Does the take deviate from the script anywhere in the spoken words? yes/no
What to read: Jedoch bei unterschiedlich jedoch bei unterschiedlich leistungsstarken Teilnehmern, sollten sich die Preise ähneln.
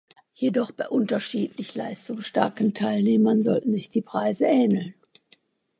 yes